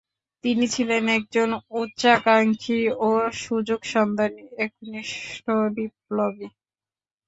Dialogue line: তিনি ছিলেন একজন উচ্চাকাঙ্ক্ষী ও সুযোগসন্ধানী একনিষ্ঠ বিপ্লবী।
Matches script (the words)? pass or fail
pass